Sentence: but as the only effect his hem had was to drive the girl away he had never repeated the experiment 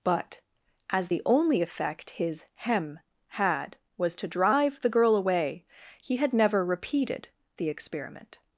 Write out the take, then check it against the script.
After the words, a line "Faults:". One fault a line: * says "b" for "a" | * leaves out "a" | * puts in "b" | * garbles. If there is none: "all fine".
but as the only effect his hem had was to drive the girl away he had never repeated the experiment
Faults:
all fine